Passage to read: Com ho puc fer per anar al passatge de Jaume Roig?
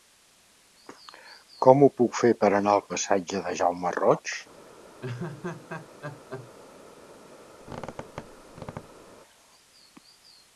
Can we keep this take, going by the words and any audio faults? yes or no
no